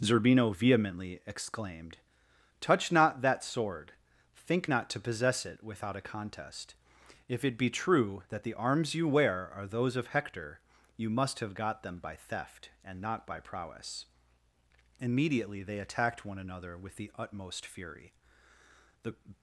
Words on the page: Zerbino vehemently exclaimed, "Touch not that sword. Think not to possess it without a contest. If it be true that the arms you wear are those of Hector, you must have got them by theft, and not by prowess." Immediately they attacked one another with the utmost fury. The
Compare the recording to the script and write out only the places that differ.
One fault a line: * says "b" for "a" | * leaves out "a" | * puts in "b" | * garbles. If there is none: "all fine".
all fine